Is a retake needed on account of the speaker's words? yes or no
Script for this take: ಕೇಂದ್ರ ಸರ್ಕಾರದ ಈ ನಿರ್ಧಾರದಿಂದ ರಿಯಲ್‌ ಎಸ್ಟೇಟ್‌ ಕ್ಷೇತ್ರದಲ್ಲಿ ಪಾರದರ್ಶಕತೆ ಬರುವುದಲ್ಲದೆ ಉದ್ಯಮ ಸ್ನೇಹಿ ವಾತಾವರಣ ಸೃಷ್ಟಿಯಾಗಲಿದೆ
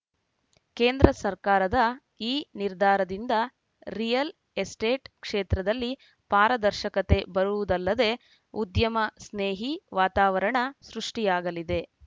no